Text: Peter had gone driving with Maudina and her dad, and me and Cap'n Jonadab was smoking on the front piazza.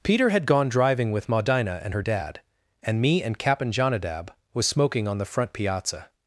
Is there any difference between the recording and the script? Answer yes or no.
no